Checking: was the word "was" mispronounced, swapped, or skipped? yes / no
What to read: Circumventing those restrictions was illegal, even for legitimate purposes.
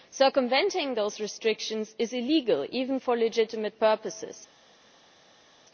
yes